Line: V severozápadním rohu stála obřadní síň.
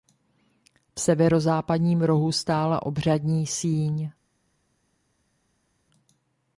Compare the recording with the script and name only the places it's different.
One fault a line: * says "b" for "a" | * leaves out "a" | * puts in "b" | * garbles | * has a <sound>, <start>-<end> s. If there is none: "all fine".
all fine